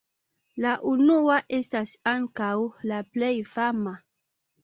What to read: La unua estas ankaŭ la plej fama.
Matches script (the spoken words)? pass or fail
pass